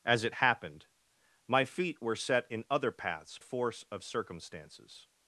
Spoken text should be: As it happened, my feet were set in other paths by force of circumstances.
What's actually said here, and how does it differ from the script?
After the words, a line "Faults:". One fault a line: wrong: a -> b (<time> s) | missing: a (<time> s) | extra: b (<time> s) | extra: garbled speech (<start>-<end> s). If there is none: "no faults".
As it happened, my feet were set in other paths force of circumstances.
Faults:
missing: by (3.4 s)